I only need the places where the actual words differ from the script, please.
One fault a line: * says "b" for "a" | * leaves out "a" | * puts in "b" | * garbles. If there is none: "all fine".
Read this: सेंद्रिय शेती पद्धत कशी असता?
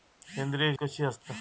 * leaves out "शेती पद्धत"